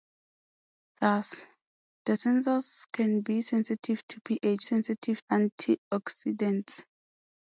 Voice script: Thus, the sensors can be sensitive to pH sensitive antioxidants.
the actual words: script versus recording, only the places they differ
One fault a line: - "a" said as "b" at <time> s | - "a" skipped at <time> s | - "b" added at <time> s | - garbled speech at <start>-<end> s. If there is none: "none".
none